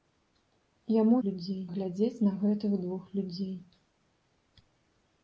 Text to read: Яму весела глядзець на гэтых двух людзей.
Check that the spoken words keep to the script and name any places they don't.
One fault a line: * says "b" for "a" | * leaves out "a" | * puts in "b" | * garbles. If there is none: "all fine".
* says "людзей" for "весела"